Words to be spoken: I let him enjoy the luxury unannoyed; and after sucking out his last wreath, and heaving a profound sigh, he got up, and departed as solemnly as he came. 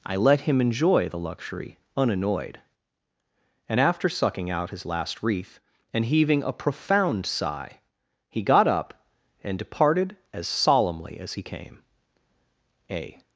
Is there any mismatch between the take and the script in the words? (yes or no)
yes